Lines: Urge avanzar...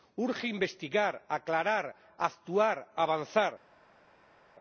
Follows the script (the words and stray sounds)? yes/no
no